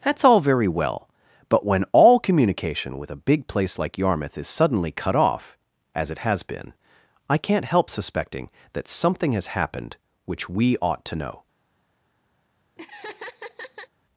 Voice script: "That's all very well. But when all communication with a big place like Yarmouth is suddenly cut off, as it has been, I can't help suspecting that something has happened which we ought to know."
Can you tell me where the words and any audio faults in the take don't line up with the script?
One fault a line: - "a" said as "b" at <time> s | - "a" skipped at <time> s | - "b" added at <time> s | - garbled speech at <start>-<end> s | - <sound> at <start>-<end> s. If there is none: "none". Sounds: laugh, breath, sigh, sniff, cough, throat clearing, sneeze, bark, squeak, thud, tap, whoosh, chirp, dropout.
- laugh at 12.8-13.9 s